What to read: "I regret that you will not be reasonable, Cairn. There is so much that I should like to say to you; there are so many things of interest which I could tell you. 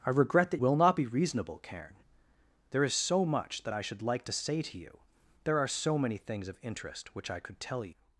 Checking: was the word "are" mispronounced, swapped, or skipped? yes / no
no